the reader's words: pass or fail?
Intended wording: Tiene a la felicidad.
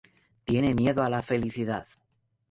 fail